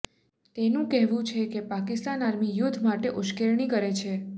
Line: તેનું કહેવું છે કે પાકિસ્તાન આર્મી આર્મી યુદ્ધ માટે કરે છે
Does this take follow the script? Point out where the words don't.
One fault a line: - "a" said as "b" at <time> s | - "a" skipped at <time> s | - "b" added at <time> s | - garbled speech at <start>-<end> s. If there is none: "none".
- "આર્મી" skipped at 2.6 s
- "ઉશ્કેરણી" added at 3.2 s